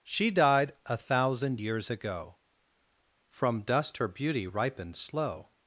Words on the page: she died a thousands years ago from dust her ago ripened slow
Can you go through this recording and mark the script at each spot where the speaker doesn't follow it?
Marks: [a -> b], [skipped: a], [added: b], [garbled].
she died a [thousands -> thousand] years ago from dust her [ago -> beauty] ripened slow